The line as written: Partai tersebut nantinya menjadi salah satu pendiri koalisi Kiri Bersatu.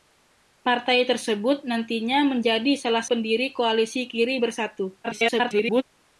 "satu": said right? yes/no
no